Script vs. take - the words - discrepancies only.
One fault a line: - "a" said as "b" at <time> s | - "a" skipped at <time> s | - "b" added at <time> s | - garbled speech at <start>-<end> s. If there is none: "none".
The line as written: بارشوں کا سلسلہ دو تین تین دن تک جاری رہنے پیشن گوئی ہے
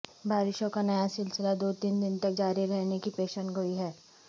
- "نیا" added at 0.8 s
- "تین" skipped at 2.0 s
- "کی" added at 3.0 s